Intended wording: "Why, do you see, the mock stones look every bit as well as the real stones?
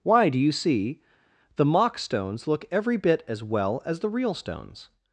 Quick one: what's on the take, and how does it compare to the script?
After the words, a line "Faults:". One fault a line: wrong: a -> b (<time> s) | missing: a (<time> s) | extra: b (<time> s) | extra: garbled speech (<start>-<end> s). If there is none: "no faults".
"Why, do you see, the mock stones look every bit as well as the real stones?
Faults:
no faults